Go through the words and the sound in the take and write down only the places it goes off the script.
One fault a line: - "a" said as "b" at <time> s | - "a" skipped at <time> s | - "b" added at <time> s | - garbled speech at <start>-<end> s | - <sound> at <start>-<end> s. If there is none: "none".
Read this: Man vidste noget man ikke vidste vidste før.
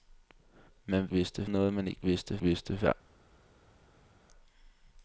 none